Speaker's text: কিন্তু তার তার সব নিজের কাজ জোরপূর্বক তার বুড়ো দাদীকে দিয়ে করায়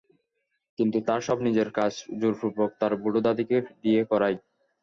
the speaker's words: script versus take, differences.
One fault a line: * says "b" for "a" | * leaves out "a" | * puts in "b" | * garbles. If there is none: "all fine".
* leaves out "তার"